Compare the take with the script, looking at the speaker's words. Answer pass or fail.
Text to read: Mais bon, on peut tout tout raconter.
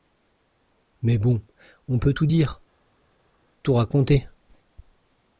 fail